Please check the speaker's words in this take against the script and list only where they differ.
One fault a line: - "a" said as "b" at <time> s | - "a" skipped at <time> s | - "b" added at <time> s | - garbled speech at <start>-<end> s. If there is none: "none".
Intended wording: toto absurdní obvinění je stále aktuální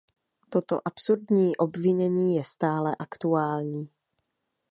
none